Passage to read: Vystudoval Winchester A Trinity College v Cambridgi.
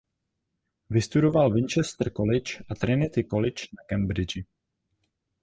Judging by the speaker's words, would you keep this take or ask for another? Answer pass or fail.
fail